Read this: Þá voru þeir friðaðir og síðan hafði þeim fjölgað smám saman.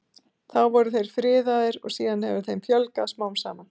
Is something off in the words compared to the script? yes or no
yes